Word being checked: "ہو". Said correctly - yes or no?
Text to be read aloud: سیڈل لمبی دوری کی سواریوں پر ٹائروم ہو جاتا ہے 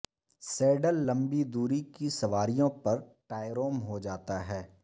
yes